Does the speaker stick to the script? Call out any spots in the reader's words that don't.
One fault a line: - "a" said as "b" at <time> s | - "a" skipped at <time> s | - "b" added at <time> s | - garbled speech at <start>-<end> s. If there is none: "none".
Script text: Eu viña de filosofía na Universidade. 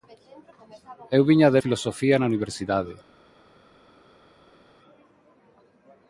none